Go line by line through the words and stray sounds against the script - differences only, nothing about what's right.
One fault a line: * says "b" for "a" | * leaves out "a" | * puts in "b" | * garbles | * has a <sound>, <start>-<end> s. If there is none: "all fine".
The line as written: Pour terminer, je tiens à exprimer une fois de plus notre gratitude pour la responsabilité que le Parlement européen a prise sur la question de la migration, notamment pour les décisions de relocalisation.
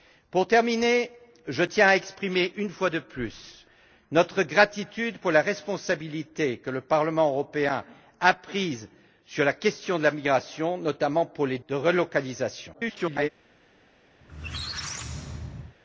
* leaves out "décisions"
* garbles
* has a squeak, 14.2-15.8 s